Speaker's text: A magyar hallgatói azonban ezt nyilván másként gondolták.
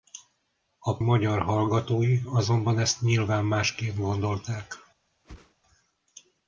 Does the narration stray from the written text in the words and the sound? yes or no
yes